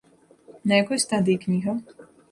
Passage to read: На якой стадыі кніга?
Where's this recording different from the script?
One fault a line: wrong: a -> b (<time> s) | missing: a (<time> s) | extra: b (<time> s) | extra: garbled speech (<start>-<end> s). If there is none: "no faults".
no faults